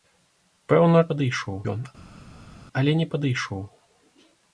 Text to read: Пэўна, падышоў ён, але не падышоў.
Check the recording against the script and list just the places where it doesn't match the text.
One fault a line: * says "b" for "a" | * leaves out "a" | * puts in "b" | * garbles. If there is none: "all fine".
all fine